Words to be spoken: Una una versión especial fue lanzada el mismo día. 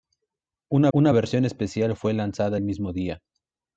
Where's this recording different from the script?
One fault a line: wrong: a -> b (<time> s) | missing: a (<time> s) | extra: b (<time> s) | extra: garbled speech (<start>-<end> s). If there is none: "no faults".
no faults